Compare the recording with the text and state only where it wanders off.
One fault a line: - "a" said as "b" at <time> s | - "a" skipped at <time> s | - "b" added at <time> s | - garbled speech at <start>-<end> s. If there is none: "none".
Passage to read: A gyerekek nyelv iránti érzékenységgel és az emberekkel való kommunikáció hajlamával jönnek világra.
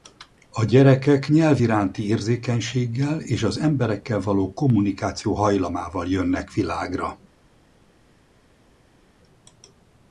none